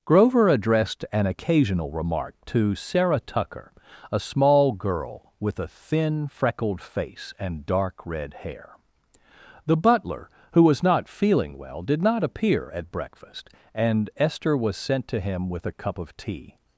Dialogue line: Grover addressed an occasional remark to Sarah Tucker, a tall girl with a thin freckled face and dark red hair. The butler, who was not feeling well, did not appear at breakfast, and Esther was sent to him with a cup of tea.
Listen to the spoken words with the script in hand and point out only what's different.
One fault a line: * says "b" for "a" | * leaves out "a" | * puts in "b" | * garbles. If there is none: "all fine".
* says "small" for "tall"